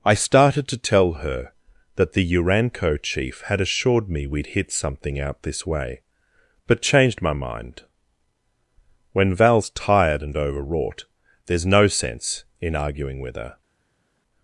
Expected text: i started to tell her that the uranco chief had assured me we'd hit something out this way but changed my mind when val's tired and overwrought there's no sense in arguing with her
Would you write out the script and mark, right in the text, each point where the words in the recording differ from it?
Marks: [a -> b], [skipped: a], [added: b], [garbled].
i started to tell her that the uranco chief had assured me we'd hit something out this way but changed my mind when val's tired and overwrought there's no sense in arguing with her